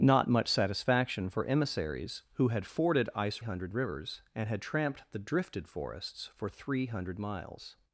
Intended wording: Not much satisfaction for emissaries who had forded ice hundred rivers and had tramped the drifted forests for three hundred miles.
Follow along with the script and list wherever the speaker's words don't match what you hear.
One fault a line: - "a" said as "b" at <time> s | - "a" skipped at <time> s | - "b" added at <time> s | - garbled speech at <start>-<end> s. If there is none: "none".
none